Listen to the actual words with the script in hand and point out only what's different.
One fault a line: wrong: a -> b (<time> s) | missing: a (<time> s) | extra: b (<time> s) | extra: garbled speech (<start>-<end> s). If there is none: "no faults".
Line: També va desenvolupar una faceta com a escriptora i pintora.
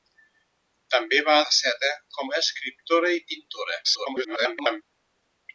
missing: desenvolupar una (1.4 s)
extra: garbled speech (3.8-4.8 s)